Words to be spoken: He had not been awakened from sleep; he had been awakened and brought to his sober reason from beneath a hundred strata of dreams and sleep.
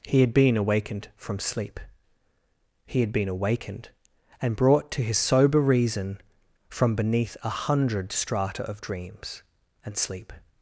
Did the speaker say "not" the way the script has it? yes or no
no